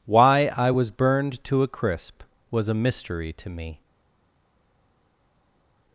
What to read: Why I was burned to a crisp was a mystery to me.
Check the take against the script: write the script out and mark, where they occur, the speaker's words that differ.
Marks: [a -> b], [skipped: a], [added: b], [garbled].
Why I was burned to a crisp was a mystery to me.